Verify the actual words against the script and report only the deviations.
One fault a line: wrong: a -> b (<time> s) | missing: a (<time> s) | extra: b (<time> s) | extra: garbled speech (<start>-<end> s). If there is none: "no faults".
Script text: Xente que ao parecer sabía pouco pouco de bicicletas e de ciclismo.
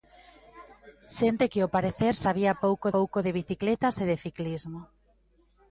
no faults